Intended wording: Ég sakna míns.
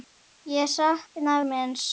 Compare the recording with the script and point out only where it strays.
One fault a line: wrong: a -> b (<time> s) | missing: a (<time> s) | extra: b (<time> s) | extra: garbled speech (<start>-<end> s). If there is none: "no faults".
no faults